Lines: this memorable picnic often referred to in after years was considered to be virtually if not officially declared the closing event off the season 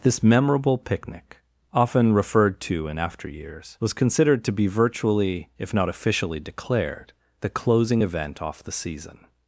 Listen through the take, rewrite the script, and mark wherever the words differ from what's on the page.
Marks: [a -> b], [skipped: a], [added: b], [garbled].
this memorable picnic often referred to in after years was considered to be virtually if not officially declared the closing event off the season